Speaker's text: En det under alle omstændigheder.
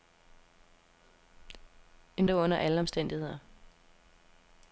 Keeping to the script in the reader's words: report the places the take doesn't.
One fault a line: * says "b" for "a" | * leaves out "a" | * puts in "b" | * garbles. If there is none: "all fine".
all fine